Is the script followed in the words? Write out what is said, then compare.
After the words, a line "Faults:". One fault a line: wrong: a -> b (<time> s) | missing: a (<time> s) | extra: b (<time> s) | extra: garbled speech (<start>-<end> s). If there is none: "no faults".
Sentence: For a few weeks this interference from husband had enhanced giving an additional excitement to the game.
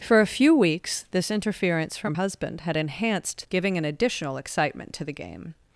For a few weeks this interference from husband had enhanced giving an additional excitement to the game.
Faults:
no faults